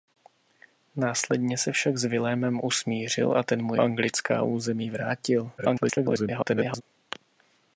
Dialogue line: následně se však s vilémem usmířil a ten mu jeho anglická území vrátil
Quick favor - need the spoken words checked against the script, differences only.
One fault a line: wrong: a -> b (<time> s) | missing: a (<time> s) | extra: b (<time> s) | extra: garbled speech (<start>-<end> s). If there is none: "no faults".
missing: jeho (3.7 s)
extra: garbled speech (5.6-6.8 s)